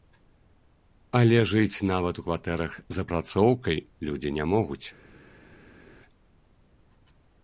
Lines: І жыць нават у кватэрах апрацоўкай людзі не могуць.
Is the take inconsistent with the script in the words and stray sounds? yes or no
yes